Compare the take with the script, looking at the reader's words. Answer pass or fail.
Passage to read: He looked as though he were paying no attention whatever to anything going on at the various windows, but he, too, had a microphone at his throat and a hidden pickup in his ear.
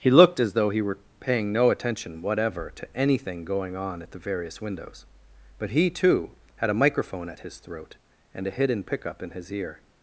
pass